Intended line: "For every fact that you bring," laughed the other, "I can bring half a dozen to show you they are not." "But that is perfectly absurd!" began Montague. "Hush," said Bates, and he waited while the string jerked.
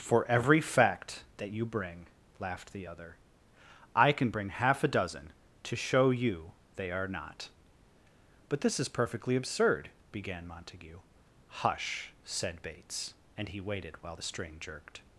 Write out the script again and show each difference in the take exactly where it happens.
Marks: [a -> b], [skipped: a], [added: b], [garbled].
"For every fact that you bring," laughed the other, "I can bring half a dozen to show you they are not." "But [that -> this] is perfectly absurd!" began Montague. "Hush," said Bates, and he waited while the string jerked.